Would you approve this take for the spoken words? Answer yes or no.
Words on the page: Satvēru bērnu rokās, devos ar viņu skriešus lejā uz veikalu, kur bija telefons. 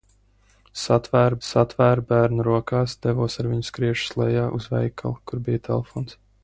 no